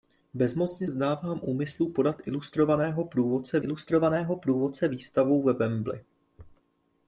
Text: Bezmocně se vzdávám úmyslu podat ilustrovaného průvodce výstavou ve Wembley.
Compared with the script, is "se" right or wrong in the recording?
wrong